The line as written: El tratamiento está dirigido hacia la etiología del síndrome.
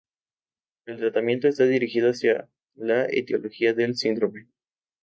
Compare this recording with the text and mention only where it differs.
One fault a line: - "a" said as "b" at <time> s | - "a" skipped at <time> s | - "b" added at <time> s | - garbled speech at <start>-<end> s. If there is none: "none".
none